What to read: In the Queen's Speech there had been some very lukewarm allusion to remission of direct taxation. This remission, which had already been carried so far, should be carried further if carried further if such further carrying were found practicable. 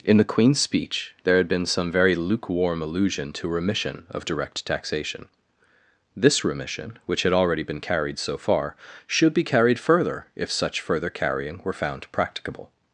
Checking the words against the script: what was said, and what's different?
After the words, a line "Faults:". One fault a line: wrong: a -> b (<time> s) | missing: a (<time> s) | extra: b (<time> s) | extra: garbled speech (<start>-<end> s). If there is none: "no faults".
In the Queen's Speech there had been some very lukewarm allusion to remission of direct taxation. This remission, which had already been carried so far, should be carried further if such further carrying were found practicable.
Faults:
missing: carried further if (10.5 s)